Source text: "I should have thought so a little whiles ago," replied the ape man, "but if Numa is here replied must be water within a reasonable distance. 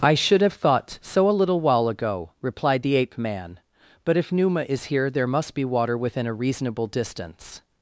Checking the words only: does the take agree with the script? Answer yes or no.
no